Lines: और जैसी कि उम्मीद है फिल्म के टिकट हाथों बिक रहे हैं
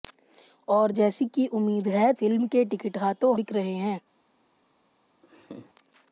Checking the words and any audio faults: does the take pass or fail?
fail